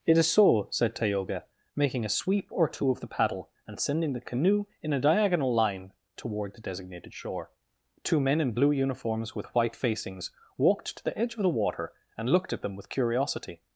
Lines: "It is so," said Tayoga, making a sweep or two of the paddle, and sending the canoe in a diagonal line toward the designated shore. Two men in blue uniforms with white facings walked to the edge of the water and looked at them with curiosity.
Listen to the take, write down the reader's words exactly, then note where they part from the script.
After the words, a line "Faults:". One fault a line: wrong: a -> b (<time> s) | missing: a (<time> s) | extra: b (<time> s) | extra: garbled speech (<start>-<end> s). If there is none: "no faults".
"It is so," said Tayoga, making a sweep or two of the paddle, and sending the canoe in a diagonal line toward the designated shore. Two men in blue uniforms with white facings walked to the edge of the water and looked at them with curiosity.
Faults:
no faults